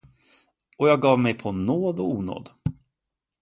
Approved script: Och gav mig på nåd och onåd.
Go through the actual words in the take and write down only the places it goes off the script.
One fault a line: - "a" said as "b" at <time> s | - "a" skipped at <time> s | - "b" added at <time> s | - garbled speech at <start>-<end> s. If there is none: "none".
- "jag" added at 0.9 s